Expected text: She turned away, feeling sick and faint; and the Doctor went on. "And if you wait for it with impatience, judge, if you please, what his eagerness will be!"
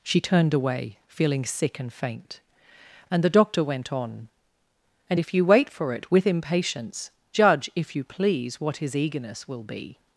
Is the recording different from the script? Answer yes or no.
no